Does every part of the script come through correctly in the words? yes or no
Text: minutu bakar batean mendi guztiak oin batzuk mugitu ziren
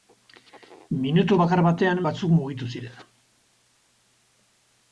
no